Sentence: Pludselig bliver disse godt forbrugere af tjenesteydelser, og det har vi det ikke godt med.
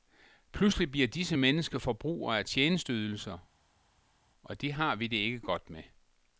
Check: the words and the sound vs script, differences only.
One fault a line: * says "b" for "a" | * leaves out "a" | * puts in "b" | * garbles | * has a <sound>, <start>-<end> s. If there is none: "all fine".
* says "mennesker" for "godt"